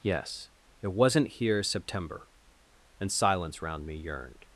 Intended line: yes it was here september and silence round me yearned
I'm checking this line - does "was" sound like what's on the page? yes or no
no